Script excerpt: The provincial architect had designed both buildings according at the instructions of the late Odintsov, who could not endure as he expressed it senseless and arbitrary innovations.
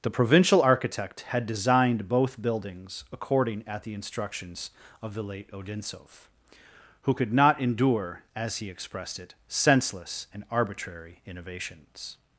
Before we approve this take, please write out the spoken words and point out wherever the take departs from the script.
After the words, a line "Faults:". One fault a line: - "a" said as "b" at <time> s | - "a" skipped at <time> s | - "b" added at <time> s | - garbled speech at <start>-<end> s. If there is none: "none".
The provincial architect had designed both buildings according at the instructions of the late Odintsov, who could not endure as he expressed it senseless and arbitrary innovations.
Faults:
none